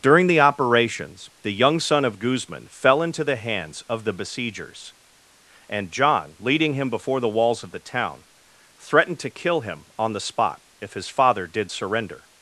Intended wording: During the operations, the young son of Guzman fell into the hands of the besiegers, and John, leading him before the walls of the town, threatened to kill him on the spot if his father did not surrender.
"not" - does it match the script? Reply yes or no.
no